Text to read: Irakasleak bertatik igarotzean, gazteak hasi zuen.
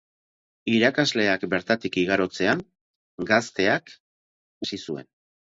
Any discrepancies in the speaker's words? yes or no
no